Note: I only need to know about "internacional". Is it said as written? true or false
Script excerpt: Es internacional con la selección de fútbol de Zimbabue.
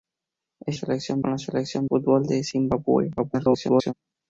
false